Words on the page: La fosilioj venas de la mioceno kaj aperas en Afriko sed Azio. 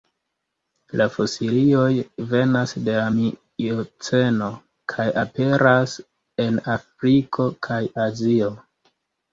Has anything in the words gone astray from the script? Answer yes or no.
yes